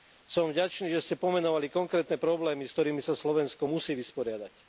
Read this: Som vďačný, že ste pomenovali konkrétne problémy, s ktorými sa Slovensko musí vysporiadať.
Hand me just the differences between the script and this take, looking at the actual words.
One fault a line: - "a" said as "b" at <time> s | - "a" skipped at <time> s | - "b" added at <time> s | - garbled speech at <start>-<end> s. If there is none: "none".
none